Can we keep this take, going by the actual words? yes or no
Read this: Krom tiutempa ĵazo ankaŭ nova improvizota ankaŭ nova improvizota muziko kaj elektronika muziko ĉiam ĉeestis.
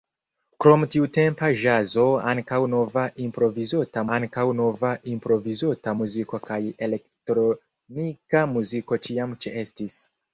yes